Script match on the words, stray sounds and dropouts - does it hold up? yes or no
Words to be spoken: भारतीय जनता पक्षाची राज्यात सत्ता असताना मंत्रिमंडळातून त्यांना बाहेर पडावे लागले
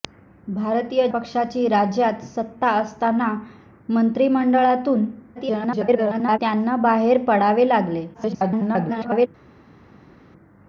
no